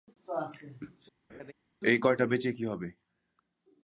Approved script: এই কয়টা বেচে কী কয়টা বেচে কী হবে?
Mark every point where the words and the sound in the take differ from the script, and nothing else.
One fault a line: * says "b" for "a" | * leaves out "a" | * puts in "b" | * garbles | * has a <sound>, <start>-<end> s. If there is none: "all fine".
* has a laugh, 1.3-1.5 s
* leaves out "কয়টা বেচে কী"